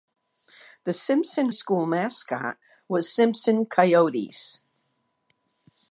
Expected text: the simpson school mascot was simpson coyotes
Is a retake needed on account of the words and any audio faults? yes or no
no